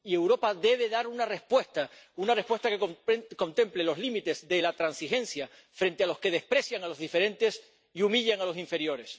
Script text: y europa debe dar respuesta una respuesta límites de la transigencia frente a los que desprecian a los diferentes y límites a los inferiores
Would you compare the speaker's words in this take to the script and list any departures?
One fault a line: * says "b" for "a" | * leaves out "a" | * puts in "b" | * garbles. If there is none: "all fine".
* puts in "una"
* puts in "que contemple los"
* says "humillan" for "límites"